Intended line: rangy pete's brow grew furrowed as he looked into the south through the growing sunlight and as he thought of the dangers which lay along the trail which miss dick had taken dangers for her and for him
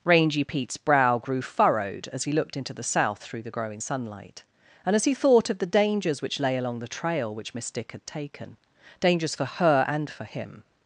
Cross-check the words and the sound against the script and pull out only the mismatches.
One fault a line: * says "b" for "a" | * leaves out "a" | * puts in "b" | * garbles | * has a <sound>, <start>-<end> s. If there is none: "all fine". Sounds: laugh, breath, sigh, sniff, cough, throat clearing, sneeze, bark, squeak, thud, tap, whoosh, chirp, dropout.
all fine